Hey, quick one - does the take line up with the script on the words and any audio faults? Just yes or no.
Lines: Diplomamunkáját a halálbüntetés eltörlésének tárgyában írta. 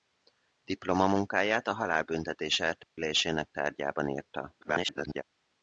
no